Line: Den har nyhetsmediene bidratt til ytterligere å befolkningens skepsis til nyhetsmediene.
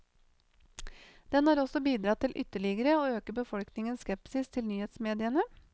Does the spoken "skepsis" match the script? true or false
true